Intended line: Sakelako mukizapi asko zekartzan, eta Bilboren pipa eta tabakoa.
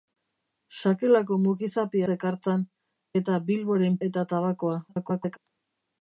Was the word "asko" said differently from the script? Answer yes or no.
yes